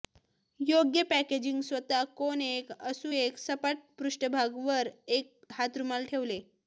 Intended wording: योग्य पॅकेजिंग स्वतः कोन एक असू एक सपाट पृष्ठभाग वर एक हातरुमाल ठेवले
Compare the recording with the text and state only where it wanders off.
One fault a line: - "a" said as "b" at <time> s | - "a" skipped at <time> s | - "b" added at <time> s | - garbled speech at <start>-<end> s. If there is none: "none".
none